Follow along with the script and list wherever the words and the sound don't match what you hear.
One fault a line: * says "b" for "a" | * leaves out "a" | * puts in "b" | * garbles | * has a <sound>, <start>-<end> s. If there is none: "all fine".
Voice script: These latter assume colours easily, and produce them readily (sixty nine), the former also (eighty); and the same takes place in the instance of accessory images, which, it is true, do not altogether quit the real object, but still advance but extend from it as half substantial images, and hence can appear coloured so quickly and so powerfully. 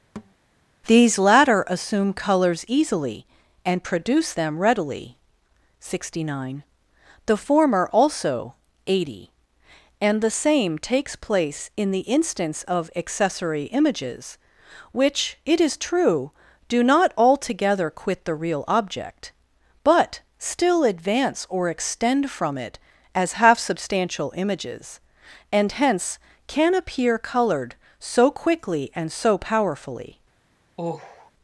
* has a thud, 0.2-0.3 s
* says "or" for "but"
* has a sigh, 30.8-31.3 s